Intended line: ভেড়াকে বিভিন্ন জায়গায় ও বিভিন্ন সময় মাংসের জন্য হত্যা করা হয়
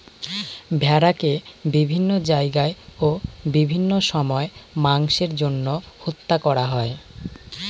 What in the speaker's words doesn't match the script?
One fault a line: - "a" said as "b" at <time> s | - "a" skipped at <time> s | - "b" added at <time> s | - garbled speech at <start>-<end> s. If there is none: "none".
none